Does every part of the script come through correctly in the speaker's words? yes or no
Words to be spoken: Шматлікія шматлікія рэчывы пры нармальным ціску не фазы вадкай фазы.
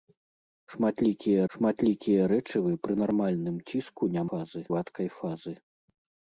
yes